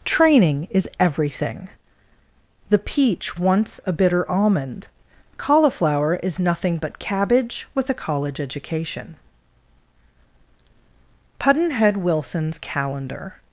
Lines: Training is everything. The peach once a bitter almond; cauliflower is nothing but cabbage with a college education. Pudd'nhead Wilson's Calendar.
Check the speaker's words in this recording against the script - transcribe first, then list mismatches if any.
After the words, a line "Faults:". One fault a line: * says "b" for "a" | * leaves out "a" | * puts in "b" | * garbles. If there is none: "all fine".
Training is everything. The peach once a bitter almond; cauliflower is nothing but cabbage with a college education. Pudd'nhead Wilson's Calendar.
Faults:
all fine